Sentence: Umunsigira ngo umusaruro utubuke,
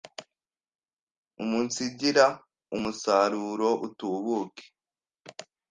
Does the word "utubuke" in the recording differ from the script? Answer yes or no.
no